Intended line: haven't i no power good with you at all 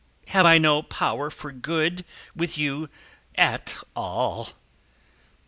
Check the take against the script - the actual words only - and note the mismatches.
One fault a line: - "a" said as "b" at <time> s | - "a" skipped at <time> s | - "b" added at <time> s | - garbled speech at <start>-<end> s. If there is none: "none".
- "haven't" said as "have" at 0.3 s
- "for" added at 1.3 s